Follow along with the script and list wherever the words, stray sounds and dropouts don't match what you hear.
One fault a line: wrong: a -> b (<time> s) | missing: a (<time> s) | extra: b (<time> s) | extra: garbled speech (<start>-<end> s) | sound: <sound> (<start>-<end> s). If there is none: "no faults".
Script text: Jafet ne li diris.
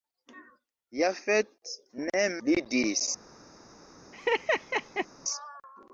sound: laugh (4.1-5.1 s)